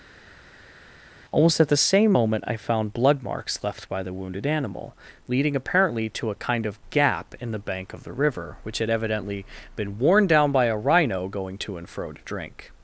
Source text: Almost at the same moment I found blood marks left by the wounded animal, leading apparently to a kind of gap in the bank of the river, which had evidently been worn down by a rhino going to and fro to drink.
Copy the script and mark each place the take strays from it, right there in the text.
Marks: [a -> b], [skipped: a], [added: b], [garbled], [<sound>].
Almost at the same moment I found blood marks left by the wounded animal, leading apparently to a kind of gap in the bank of the river, which had evidently been worn down by a rhino going to and fro to drink.